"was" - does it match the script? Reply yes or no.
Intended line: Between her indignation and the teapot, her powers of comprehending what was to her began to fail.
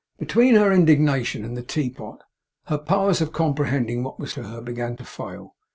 yes